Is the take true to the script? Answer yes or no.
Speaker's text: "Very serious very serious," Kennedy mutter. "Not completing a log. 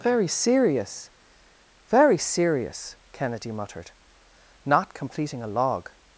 no